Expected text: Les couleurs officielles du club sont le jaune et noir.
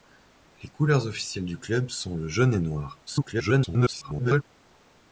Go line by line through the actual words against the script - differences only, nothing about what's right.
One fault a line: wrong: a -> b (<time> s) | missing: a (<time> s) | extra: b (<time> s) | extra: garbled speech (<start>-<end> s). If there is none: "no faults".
extra: garbled speech (3.1-4.4 s)